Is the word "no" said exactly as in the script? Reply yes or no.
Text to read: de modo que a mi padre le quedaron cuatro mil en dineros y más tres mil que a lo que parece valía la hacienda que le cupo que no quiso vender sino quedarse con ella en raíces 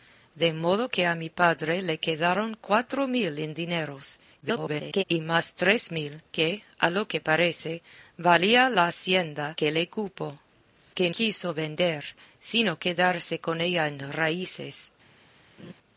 no